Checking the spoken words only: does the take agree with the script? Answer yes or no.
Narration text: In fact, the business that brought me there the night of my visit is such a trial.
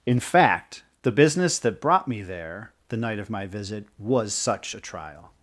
no